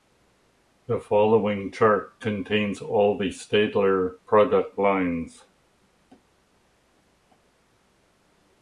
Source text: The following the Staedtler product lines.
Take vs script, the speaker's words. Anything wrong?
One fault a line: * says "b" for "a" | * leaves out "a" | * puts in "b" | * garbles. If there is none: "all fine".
* puts in "chart contains all"